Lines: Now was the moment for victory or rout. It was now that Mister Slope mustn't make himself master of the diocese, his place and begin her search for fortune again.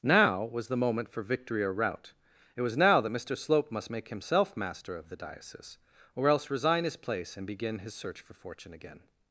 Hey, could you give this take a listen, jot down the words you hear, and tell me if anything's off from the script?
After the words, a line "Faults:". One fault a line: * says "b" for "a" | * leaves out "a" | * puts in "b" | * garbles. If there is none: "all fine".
Now was the moment for victory or rout. It was now that Mister Slope must make himself master of the diocese, or else resign his place and begin his search for fortune again.
Faults:
* says "must" for "mustn't"
* puts in "or else resign"
* says "his" for "her"